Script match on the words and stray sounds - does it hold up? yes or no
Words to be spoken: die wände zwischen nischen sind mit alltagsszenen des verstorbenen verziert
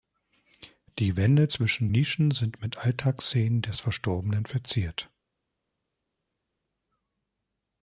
yes